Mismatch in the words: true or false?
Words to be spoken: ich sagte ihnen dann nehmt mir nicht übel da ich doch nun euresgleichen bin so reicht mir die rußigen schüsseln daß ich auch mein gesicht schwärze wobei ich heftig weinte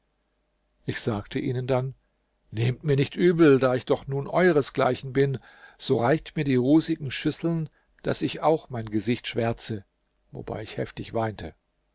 false